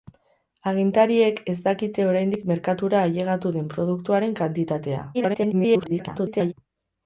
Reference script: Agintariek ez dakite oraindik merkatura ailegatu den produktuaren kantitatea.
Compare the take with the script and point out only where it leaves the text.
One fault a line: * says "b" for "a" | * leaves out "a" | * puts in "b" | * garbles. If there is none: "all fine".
* garbles